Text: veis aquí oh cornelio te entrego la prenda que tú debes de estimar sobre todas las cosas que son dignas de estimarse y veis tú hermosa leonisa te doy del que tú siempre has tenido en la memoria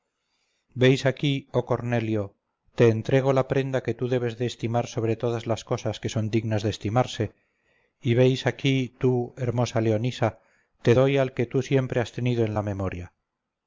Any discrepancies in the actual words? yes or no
yes